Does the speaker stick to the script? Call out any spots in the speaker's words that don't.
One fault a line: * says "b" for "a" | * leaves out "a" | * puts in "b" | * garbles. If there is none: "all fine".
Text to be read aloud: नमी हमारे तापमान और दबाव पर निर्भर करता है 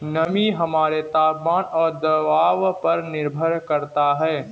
all fine